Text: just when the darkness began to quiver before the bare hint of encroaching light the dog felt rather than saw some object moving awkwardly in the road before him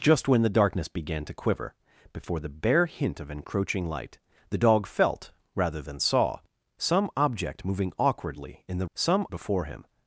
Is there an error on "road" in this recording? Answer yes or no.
yes